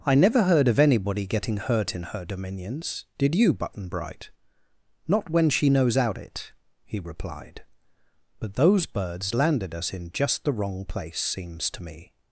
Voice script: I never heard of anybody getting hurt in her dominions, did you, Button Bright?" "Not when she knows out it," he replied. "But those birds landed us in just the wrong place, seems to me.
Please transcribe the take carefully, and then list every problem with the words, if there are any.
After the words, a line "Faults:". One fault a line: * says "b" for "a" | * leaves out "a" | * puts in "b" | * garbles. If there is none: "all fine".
I never heard of anybody getting hurt in her dominions, did you, Button Bright?" "Not when she knows out it," he replied. "But those birds landed us in just the wrong place, seems to me.
Faults:
all fine